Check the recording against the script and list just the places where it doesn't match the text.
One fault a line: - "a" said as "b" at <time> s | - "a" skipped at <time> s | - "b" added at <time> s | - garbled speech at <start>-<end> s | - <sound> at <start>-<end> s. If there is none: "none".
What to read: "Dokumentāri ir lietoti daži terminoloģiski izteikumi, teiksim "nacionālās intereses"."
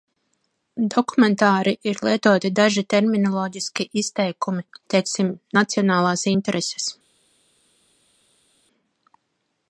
none